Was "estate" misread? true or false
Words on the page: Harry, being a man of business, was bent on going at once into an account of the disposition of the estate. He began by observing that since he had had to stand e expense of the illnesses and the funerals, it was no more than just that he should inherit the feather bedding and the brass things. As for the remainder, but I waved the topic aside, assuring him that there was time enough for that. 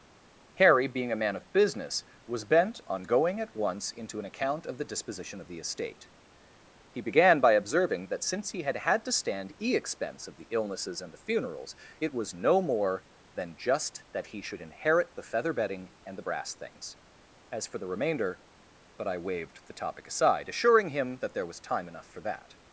false